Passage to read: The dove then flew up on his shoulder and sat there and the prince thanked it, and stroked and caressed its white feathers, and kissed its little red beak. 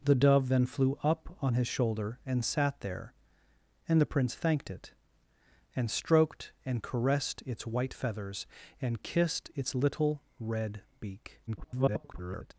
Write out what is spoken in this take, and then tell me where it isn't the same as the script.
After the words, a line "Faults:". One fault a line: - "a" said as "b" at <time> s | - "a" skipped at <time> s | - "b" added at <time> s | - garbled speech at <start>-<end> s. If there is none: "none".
The dove then flew up on his shoulder and sat there and the prince thanked it, and stroked and caressed its white feathers, and kissed its little red beak. [garbled]
Faults:
- garbled speech at 11.5-12.5 s